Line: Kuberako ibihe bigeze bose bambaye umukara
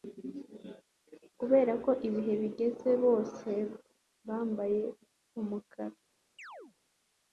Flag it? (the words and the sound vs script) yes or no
yes